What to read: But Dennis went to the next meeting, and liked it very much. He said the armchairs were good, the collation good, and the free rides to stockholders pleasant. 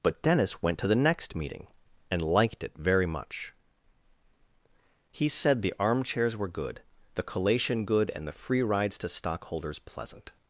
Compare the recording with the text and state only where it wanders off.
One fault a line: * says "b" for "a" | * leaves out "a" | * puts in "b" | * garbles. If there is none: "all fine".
all fine